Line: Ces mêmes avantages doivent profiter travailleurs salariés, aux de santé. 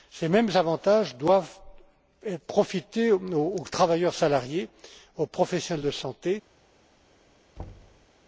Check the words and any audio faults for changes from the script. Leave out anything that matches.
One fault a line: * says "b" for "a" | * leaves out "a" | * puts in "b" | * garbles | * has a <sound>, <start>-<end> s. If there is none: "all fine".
* puts in "aux"
* puts in "professionnels"
* has a thud, 7.6-8.1 s